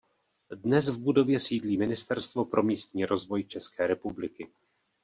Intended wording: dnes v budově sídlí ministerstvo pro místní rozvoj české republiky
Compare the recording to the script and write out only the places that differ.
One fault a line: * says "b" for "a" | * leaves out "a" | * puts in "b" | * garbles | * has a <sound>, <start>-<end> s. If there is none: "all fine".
all fine